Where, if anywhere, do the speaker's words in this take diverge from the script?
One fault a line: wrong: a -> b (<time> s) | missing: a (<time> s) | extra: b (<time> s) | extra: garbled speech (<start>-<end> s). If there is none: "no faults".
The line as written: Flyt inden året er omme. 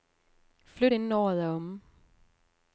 no faults